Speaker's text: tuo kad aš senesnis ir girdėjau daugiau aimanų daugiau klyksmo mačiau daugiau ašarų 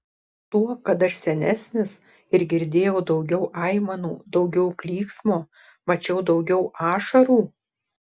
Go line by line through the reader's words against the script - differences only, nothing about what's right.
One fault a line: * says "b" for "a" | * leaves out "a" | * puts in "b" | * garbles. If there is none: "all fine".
all fine